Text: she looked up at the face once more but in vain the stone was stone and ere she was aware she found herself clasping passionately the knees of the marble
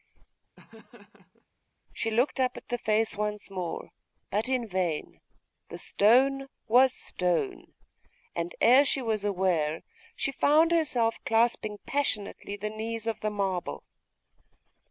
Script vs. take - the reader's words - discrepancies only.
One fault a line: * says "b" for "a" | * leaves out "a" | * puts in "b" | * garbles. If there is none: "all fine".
all fine